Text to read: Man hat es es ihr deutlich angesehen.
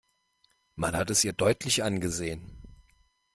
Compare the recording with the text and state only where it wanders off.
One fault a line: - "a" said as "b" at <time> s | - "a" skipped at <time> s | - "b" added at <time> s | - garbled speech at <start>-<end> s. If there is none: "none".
- "es" skipped at 1.2 s